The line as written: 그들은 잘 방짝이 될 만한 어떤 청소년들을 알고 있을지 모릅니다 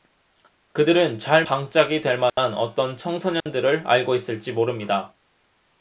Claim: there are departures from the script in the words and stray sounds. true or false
true